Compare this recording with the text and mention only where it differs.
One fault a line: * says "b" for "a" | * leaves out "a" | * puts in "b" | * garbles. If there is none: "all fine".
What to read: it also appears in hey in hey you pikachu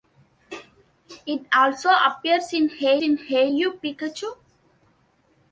all fine